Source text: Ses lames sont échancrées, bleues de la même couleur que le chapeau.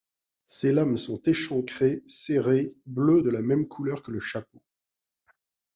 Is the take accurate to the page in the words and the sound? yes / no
no